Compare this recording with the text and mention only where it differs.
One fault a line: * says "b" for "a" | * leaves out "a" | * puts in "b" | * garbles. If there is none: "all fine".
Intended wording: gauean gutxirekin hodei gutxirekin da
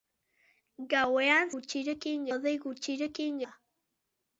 all fine